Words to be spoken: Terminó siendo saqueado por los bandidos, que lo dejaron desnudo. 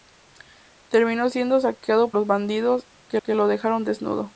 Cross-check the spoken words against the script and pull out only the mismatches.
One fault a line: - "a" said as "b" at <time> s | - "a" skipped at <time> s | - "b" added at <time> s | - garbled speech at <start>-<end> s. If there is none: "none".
- "por" skipped at 2.1 s
- "que" added at 3.2 s